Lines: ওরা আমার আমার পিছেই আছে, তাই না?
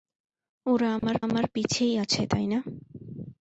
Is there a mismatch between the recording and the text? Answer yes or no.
no